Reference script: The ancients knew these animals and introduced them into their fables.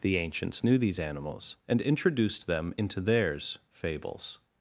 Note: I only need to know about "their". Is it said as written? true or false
false